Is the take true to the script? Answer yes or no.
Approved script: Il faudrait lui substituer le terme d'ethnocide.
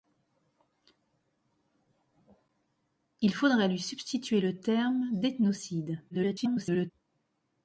no